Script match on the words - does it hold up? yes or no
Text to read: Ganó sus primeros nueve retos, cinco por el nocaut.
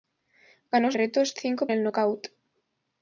no